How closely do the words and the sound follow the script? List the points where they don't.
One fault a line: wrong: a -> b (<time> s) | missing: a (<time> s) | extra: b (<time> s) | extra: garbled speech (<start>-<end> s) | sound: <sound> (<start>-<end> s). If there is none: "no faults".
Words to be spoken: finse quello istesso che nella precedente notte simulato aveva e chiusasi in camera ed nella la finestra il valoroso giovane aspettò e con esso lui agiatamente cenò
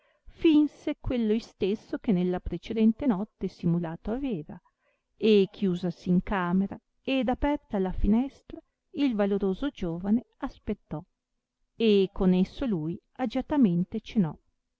wrong: nella -> aperta (7.3 s)